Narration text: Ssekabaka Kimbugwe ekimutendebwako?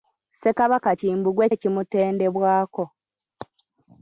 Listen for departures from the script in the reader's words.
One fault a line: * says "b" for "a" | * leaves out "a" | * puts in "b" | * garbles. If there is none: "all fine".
all fine